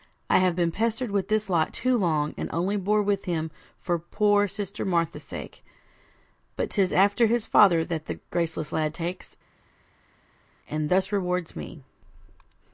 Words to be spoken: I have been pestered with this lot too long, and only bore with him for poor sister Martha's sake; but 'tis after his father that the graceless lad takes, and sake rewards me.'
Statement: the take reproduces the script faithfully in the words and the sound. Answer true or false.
false